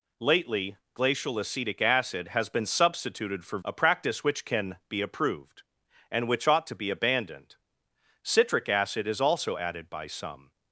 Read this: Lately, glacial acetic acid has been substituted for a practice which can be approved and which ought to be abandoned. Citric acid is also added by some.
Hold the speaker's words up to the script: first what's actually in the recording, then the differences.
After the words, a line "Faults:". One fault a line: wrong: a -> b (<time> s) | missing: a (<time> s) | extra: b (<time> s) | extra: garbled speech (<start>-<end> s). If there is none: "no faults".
Lately, glacial acetic acid has been substituted for a practice which can be approved and which ought to be abandoned. Citric acid is also added by some.
Faults:
no faults